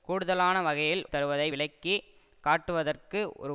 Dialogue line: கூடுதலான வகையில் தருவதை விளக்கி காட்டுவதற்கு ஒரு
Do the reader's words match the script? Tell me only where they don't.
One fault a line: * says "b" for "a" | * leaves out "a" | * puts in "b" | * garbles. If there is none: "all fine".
all fine